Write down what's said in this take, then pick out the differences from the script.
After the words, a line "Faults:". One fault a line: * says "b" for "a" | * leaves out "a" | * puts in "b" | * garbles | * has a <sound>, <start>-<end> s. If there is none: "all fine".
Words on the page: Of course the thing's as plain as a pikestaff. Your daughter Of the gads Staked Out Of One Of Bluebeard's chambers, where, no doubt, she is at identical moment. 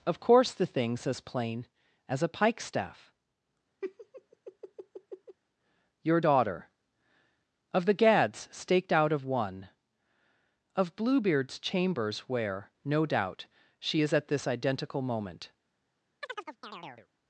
Of course the thing's as plain as a pikestaff. Your daughter Of the gads Staked Out Of One Of Bluebeard's chambers, where, no doubt, she is at this identical moment.
Faults:
* has a laugh, 3.8-5.4 s
* puts in "this"
* has a chirp, 16.2-17.1 s